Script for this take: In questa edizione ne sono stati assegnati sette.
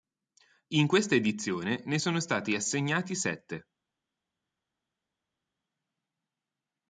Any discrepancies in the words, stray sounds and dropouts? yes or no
no